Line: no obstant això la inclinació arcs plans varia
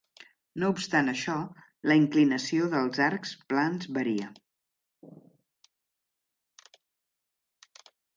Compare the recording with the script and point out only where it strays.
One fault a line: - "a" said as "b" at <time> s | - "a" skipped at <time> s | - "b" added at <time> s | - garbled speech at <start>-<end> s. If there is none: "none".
- "dels" added at 2.7 s